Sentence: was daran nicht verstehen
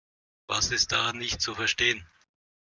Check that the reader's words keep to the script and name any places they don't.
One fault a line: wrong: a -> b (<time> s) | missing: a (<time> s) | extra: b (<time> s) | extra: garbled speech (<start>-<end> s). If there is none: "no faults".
extra: ist (0.7 s)
extra: zu (1.4 s)